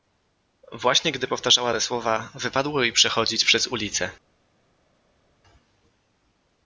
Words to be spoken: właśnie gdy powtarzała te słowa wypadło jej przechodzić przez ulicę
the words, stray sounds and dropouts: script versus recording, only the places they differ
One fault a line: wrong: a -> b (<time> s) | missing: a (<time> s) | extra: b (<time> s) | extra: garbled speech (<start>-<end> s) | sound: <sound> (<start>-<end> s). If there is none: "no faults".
no faults